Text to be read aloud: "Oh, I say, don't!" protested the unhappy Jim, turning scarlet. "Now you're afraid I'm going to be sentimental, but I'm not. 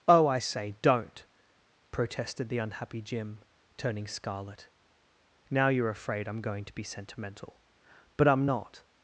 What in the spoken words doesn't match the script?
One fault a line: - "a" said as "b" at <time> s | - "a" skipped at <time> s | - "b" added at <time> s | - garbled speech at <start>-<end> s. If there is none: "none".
none